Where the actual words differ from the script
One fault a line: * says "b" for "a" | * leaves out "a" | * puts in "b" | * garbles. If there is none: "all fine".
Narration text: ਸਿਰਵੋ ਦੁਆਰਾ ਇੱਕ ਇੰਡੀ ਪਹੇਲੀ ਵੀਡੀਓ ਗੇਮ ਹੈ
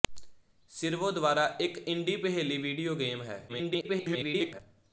* garbles